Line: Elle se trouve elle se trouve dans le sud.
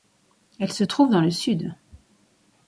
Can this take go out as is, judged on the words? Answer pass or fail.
fail